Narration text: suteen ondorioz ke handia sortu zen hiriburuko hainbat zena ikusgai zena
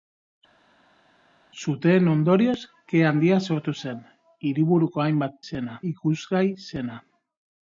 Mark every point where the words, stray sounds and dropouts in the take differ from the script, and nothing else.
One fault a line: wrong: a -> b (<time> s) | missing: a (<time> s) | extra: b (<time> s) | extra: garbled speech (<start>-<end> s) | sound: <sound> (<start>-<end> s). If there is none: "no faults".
no faults